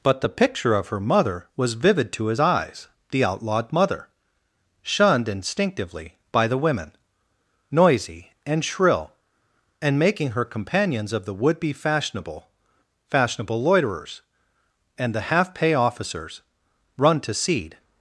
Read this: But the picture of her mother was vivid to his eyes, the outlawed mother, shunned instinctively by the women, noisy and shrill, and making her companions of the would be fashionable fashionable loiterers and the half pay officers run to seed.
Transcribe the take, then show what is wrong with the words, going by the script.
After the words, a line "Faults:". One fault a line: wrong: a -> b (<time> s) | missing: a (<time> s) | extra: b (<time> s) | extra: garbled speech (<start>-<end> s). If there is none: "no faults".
But the picture of her mother was vivid to his eyes, the outlawed mother, shunned instinctively by the women, noisy and shrill, and making her companions of the would be fashionable fashionable loiterers and the half pay officers run to seed.
Faults:
no faults